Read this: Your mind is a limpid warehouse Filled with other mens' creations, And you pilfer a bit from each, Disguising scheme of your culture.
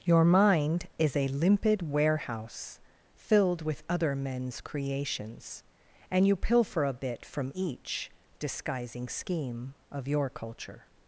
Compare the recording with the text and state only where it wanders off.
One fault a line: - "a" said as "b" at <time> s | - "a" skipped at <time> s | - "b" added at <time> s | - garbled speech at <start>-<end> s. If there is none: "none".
none